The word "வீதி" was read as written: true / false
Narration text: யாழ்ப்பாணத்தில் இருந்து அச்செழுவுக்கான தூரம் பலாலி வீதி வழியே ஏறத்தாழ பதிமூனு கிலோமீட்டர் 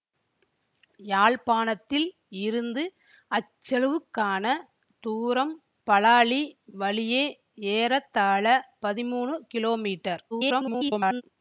false